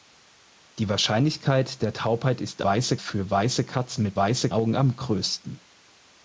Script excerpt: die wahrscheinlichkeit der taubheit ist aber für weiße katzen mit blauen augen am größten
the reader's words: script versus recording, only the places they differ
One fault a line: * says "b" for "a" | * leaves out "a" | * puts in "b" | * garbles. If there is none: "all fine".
* says "weiße" for "aber"
* says "weiße" for "blauen"